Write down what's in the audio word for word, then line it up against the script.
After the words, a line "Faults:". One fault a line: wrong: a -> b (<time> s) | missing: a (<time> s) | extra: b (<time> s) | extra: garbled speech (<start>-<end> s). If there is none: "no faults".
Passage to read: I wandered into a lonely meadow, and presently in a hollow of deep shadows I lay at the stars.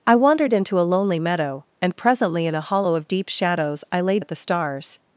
I wandered into a lonely meadow, and presently in a hollow of deep shadows I lay at the stars.
Faults:
no faults